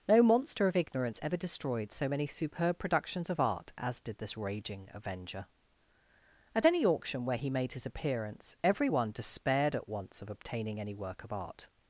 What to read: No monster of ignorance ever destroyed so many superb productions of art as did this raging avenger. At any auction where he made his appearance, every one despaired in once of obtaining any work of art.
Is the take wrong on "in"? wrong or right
wrong